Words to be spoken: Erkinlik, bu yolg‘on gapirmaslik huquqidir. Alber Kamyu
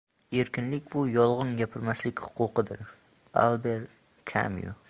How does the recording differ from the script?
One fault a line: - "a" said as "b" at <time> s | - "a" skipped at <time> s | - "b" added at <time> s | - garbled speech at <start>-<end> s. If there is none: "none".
none